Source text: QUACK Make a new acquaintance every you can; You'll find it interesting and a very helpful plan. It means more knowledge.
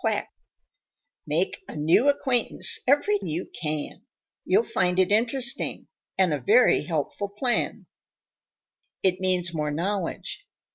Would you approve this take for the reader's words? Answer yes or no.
yes